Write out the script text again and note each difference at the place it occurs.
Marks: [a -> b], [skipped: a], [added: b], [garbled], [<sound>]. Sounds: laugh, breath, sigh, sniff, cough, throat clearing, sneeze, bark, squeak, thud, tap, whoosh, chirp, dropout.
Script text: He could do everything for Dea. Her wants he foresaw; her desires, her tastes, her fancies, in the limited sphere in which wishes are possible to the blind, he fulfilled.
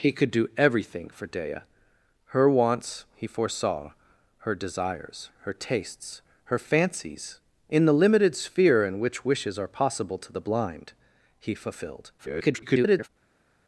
He could do everything for Dea. Her wants he foresaw; her desires, her tastes, her fancies, in the limited sphere in which wishes are possible to the blind, he fulfilled. [garbled]